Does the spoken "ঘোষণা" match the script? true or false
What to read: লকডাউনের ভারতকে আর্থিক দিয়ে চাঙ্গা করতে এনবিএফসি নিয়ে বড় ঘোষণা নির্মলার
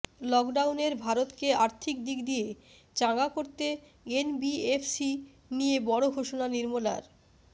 true